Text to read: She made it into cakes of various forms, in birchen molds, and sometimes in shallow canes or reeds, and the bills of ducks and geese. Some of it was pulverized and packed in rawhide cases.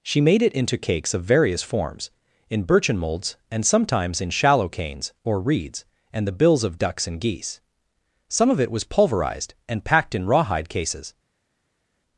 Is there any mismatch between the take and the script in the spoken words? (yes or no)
no